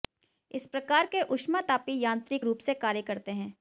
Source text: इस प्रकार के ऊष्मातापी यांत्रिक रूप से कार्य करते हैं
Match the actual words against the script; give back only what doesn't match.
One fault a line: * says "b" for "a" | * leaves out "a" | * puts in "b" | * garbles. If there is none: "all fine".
all fine